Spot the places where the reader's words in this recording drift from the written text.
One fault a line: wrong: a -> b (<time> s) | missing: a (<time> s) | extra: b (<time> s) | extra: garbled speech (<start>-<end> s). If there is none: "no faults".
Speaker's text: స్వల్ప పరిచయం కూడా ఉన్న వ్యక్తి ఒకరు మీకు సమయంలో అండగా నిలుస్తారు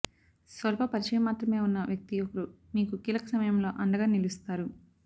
wrong: కూడా -> మాత్రమే (1.2 s)
extra: కీలక (3.0 s)